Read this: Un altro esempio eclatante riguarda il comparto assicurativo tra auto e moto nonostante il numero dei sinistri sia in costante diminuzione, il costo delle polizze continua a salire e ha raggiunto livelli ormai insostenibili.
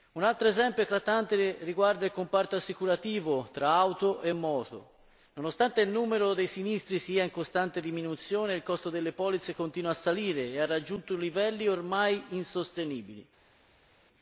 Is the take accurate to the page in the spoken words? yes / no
yes